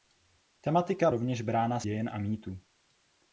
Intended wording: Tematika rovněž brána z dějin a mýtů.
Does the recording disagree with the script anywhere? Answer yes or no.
no